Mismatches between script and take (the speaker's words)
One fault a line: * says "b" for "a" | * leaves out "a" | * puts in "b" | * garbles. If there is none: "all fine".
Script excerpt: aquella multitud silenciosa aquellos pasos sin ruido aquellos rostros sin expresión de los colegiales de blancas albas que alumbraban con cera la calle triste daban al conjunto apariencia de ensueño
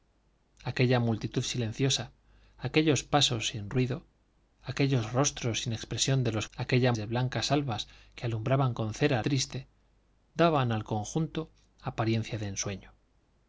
* says "aquella" for "colegiales"
* leaves out "la calle"